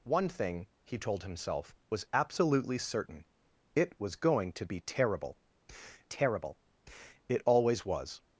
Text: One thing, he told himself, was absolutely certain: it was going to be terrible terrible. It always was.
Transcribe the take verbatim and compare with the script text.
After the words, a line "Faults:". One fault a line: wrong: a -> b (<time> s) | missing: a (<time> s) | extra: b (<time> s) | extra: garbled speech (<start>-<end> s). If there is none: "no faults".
One thing, he told himself, was absolutely certain: it was going to be terrible terrible. It always was.
Faults:
no faults